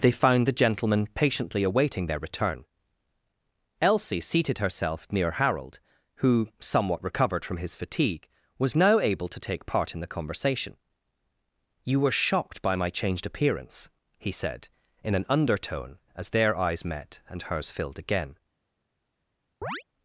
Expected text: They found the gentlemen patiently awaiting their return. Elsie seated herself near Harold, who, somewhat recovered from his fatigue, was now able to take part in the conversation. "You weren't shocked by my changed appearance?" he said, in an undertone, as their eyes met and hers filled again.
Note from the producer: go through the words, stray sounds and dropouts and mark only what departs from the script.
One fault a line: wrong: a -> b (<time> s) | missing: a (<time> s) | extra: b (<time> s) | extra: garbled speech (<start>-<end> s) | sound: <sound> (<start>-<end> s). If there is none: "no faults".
wrong: weren't -> were (12.0 s)
sound: chirp (19.6-19.8 s)